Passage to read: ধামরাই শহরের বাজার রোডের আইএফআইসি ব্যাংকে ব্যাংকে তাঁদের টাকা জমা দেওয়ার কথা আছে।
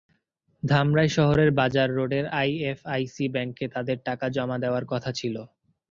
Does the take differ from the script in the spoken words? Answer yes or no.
yes